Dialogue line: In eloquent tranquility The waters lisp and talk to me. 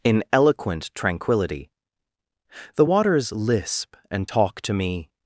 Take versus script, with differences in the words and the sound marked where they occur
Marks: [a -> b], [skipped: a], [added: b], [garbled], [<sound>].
In eloquent tranquility The waters lisp and talk to me.